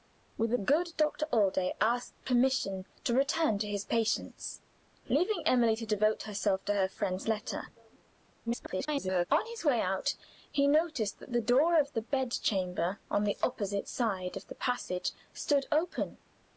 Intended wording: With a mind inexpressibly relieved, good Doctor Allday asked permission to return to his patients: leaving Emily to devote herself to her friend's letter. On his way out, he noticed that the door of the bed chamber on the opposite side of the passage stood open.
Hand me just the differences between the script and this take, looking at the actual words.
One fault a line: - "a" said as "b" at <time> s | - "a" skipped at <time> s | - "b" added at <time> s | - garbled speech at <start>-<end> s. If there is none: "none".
- "mind inexpressibly relieved" skipped at 0.6 s
- garbled speech at 8.5-9.3 s